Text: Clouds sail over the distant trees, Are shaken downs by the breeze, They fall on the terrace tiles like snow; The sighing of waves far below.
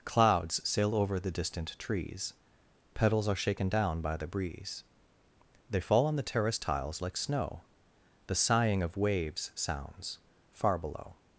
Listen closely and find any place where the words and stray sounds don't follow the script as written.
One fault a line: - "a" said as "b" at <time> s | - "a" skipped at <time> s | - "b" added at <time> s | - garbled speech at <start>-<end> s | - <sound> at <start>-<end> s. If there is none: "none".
- "Petals" added at 2.9 s
- "downs" said as "down" at 3.7 s
- "sounds" added at 9.5 s